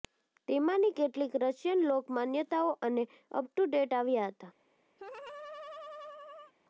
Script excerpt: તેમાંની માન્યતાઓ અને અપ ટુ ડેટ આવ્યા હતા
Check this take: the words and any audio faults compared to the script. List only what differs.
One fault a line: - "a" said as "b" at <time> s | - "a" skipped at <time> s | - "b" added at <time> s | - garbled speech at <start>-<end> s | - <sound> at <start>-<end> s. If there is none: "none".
- "કેટલીક રશિયન લોક" added at 0.9 s
- laugh at 5.0-6.5 s